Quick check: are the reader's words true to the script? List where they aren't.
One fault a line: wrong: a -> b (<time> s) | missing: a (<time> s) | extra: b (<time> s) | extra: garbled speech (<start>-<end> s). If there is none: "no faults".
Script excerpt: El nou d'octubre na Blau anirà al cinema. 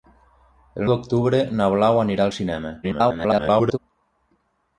missing: nou (0.9 s)
extra: garbled speech (2.8-3.8 s)